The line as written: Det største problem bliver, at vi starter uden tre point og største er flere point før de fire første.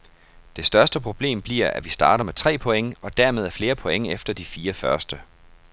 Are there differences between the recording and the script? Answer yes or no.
yes